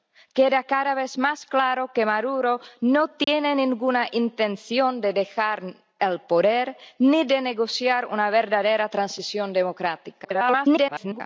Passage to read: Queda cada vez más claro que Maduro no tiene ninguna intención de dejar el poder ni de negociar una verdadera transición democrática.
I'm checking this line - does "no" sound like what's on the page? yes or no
yes